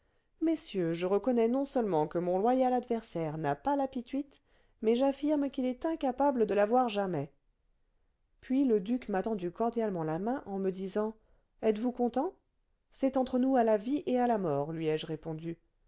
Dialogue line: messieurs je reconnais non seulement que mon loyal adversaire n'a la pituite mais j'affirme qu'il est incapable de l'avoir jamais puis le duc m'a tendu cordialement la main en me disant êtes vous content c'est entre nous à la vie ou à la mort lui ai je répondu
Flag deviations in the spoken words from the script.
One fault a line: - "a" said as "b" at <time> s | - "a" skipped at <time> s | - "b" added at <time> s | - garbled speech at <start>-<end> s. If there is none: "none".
- "pas" added at 3.5 s
- "ou" said as "et" at 14.1 s